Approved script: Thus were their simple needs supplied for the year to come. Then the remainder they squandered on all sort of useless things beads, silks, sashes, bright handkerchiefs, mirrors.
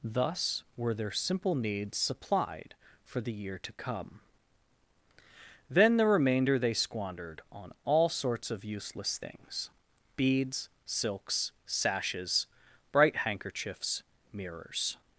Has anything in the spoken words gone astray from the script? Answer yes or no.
yes